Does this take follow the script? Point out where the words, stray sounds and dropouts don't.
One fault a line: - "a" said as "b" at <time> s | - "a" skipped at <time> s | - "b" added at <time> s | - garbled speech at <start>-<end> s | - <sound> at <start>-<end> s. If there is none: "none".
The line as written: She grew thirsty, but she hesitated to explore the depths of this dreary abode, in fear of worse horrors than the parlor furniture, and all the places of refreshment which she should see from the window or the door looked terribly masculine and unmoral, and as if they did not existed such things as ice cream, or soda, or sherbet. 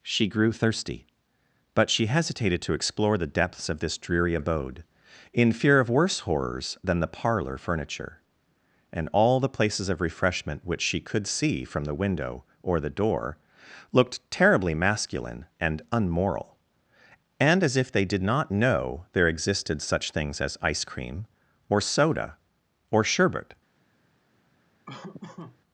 - "should" said as "could" at 11.0 s
- "know there" added at 18.5 s
- laugh at 24.9-25.6 s